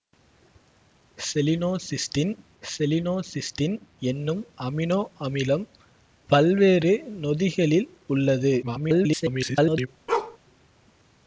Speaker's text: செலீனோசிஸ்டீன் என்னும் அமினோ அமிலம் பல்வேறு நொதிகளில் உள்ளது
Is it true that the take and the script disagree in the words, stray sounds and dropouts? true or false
true